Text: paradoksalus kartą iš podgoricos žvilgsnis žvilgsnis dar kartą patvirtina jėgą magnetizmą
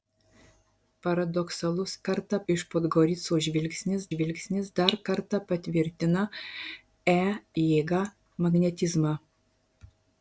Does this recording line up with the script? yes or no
yes